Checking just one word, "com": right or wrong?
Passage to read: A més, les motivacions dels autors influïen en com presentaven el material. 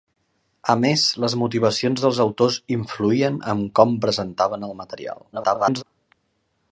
right